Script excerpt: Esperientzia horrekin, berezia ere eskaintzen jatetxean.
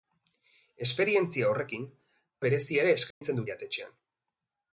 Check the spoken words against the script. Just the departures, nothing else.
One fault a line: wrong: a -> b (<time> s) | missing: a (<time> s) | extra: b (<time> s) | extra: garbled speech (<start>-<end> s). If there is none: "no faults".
no faults